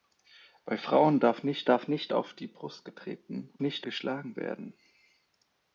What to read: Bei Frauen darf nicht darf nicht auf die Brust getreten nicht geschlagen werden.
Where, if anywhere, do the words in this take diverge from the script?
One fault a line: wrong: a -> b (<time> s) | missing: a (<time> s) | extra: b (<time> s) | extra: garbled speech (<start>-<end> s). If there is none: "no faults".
no faults